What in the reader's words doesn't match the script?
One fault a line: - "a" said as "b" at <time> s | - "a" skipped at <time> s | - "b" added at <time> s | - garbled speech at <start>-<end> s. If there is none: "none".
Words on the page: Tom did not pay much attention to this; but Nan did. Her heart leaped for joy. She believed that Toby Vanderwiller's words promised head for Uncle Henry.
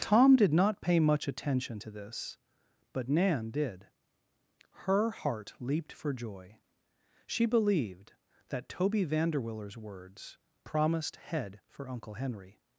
none